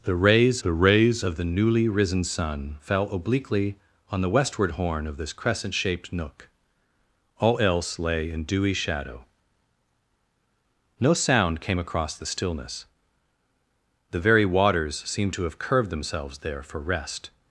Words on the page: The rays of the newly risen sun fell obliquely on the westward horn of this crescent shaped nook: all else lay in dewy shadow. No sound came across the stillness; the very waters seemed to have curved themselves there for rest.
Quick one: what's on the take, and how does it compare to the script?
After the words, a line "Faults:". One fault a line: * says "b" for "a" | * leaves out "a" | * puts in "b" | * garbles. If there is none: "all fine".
The rays the rays of the newly risen sun fell obliquely on the westward horn of this crescent shaped nook: all else lay in dewy shadow. No sound came across the stillness; the very waters seemed to have curved themselves there for rest.
Faults:
* puts in "the rays"